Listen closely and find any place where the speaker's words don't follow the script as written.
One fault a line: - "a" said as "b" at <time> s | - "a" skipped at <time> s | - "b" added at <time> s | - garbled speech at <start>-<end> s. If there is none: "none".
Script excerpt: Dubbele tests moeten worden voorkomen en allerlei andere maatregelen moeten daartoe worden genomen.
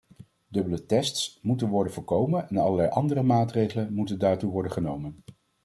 none